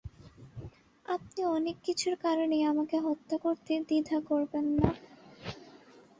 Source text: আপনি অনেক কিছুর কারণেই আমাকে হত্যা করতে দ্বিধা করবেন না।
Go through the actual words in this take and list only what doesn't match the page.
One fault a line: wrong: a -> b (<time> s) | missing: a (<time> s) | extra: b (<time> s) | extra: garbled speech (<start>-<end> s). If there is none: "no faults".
no faults